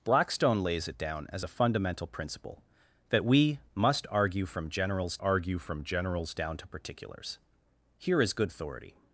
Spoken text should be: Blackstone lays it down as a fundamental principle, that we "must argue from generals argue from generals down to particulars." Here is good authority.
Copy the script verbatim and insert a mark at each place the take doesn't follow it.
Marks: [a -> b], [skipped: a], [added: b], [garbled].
Blackstone lays it down as a fundamental principle, that we "must argue from generals argue from generals down to particulars." Here is good authority.